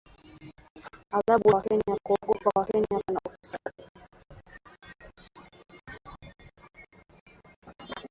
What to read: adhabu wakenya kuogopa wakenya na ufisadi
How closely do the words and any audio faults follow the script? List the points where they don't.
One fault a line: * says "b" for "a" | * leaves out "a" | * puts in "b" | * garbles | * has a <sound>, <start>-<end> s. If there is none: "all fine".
* has a dropout, 3.6-3.7 s